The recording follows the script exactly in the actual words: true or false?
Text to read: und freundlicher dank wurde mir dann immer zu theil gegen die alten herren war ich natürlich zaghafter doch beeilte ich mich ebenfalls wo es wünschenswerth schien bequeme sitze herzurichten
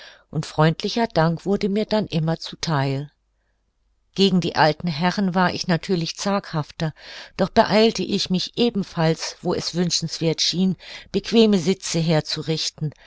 true